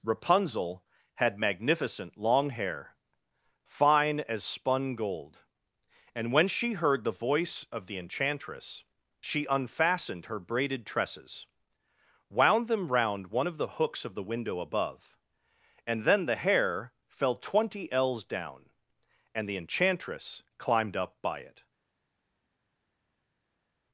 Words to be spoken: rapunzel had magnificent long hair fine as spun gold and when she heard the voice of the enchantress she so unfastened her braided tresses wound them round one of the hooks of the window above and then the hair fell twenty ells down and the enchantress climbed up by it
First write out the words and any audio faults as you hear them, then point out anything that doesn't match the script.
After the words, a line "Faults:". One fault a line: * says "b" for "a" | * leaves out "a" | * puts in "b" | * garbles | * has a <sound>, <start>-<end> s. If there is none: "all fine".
rapunzel had magnificent long hair fine as spun gold and when she heard the voice of the enchantress she unfastened her braided tresses wound them round one of the hooks of the window above and then the hair fell twenty ells down and the enchantress climbed up by it
Faults:
* leaves out "so"